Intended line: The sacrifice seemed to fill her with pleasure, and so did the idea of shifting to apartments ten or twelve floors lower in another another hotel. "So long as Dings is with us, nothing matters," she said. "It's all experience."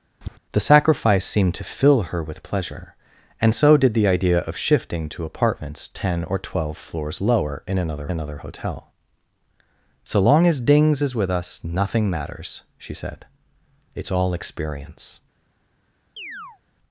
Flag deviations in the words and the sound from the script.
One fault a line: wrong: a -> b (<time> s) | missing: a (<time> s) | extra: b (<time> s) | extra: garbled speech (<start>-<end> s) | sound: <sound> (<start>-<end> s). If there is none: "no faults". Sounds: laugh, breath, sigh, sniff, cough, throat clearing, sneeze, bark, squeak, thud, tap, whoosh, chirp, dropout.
sound: tap (0.2-0.4 s)
sound: chirp (16.2-16.6 s)